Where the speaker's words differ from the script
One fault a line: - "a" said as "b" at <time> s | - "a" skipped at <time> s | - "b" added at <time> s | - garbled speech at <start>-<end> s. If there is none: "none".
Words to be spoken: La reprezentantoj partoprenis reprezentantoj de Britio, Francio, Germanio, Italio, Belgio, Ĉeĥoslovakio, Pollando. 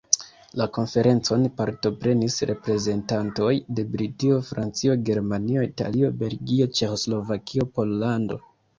- "reprezentantoj" said as "konferencon" at 0.7 s